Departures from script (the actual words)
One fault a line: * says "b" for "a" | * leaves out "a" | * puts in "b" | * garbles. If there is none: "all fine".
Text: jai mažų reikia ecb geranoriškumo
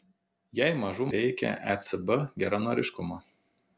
all fine